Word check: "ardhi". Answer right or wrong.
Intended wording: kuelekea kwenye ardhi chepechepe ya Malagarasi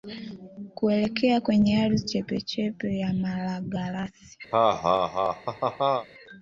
right